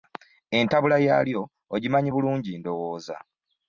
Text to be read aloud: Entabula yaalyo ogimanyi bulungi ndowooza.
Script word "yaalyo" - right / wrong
right